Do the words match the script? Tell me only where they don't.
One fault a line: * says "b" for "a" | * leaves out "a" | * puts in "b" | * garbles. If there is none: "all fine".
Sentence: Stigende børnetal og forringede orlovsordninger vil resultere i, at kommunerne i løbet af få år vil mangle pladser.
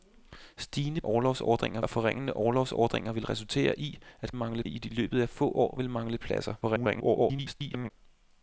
* says "orlovsordninger" for "børnetal"
* says "mangle" for "kommunerne"
* garbles